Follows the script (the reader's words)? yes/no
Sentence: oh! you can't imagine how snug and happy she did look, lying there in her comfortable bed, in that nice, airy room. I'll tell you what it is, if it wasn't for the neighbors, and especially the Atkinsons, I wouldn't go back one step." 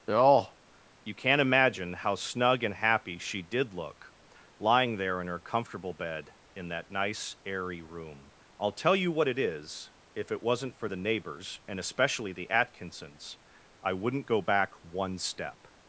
yes